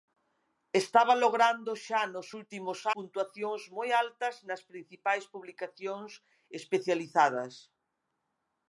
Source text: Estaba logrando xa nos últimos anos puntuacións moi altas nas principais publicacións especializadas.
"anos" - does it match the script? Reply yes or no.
no